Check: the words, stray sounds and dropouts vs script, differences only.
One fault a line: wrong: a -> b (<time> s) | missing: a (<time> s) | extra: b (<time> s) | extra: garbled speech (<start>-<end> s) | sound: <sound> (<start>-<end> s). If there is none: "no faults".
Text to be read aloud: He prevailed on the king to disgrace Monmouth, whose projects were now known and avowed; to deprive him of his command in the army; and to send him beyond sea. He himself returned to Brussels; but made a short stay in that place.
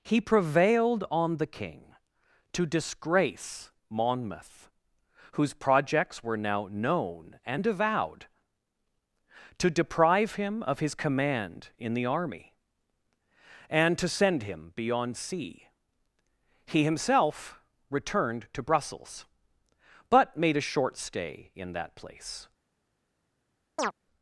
sound: chirp (23.8-23.9 s)